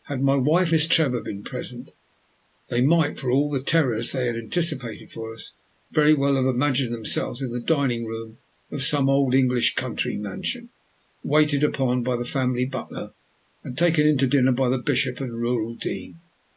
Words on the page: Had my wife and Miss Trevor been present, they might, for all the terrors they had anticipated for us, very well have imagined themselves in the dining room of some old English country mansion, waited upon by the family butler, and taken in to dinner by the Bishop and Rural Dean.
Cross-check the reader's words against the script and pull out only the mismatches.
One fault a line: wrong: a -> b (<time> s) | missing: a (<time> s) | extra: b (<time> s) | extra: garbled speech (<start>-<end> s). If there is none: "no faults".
missing: and (0.7 s)